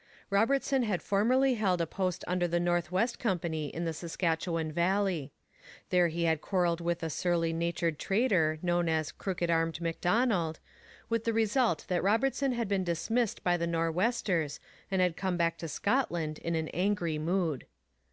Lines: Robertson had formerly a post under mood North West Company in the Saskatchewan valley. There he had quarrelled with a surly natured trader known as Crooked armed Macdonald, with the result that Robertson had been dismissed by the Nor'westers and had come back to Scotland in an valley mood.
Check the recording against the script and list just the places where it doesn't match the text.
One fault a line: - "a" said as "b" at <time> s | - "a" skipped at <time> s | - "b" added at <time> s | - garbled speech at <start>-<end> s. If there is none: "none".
- "held" added at 1.5 s
- "mood" said as "the" at 2.5 s
- "valley" said as "angry" at 16.7 s